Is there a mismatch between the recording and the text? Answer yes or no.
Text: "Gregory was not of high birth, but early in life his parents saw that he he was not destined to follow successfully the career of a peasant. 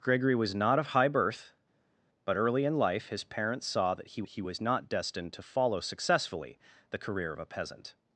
no